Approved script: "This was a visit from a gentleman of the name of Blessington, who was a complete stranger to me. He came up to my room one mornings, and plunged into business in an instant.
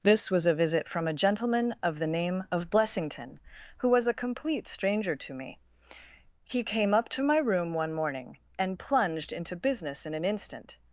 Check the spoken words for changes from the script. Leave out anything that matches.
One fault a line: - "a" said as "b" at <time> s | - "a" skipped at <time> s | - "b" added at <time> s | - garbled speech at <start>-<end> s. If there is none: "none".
- "mornings" said as "morning" at 7.9 s